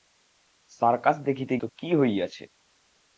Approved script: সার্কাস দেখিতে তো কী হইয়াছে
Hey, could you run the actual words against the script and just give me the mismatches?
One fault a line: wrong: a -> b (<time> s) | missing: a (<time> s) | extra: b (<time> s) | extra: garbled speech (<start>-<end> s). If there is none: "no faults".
no faults